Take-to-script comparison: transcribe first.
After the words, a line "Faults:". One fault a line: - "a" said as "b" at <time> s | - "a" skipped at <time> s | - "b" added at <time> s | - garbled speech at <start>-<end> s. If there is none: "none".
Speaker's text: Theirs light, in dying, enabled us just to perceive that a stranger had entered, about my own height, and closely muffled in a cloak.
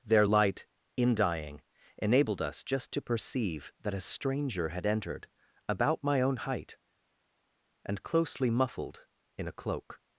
Their light, in dying, enabled us just to perceive that a stranger had entered, about my own height, and closely muffled in a cloak.
Faults:
- "Theirs" said as "Their" at 0.0 s